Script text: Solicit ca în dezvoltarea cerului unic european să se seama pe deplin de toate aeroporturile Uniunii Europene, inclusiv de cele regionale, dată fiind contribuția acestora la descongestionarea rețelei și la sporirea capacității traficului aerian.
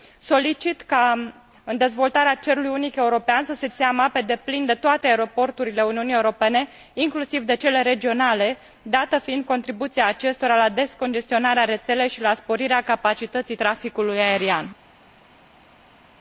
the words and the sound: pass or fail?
pass